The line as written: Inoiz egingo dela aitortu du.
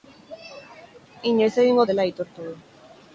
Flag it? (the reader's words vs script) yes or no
no